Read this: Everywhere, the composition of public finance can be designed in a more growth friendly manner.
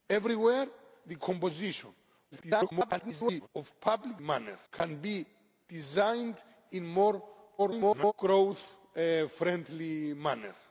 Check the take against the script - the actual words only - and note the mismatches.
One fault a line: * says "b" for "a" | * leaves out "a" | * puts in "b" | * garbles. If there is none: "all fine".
* garbles
* says "manner" for "finance"
* garbles